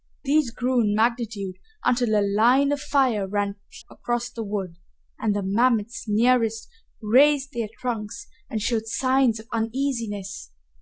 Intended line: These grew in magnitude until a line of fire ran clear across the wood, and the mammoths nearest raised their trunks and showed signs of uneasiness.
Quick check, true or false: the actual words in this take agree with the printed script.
false